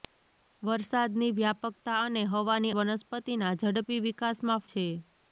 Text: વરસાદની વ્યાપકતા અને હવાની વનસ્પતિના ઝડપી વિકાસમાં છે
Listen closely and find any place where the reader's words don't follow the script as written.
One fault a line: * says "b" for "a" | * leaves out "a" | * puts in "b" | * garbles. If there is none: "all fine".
all fine